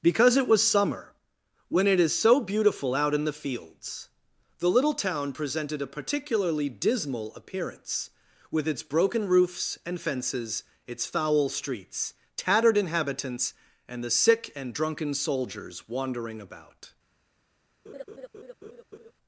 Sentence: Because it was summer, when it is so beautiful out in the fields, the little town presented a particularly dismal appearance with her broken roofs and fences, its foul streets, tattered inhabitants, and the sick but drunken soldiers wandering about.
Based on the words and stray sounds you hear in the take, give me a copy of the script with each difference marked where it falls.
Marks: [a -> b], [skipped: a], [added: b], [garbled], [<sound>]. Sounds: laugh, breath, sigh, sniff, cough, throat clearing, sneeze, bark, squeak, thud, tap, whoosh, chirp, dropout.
Because it was summer, when it is so beautiful out in the fields, the little town presented a particularly dismal appearance with [her -> its] broken roofs and fences, its foul streets, tattered inhabitants, and the sick [but -> and] drunken soldiers wandering about. [laugh]